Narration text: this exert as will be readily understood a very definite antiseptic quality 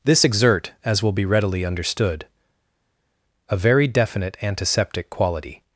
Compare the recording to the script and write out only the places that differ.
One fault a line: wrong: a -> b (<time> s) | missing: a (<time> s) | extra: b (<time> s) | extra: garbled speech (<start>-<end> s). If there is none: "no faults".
no faults